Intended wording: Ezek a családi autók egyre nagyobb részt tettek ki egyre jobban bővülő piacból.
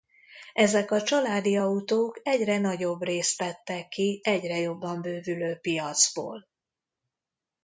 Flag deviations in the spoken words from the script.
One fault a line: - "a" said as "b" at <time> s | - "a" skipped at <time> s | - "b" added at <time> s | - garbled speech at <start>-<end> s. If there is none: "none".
none